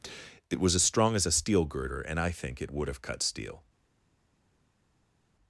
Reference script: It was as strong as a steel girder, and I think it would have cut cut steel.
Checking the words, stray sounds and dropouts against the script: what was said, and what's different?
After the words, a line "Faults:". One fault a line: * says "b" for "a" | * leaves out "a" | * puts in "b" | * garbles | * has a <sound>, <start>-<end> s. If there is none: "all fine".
It was as strong as a steel girder, and I think it would have cut steel.
Faults:
* leaves out "cut"